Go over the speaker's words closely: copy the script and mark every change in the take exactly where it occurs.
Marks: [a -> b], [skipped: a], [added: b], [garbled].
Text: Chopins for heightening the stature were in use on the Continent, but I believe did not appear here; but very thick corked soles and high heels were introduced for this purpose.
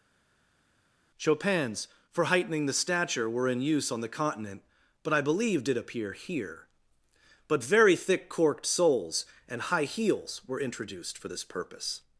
Chopins for heightening the stature were in use on the Continent, but I believe did [skipped: not] appear here; but very thick corked soles and high heels were introduced for this purpose.